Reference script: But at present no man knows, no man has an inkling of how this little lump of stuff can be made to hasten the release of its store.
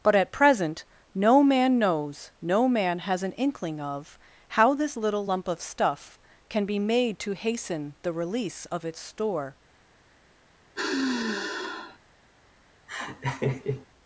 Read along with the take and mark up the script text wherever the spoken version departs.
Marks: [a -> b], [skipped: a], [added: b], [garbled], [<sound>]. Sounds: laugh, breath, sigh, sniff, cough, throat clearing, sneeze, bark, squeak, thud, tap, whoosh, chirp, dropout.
But at present no man knows, no man has an inkling of how this little lump of stuff can be made to hasten the release of its store. [sigh] [laugh]